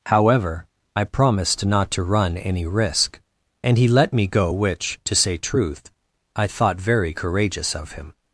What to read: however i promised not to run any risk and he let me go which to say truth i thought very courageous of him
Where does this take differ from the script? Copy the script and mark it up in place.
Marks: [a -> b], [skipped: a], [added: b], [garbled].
however i promised not to run any risk and he let me go which to say truth i thought very courageous of him